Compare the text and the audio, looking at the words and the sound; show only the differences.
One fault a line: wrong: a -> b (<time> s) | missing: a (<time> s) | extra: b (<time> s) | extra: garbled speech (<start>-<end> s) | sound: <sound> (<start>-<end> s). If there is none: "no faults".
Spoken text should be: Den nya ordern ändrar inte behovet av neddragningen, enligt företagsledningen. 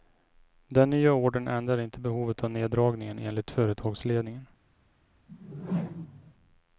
sound: whoosh (5.3-6.3 s)